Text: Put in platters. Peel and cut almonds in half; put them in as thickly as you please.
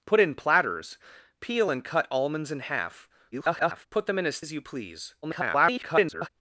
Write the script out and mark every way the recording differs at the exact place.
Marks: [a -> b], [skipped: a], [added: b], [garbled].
Put in platters. Peel and cut almonds in half; [garbled] put them in as [skipped: thickly] as you please. [garbled]